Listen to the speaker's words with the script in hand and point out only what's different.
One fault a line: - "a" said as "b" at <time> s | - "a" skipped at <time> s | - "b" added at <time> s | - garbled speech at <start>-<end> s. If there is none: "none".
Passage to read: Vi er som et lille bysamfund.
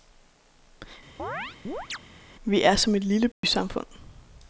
none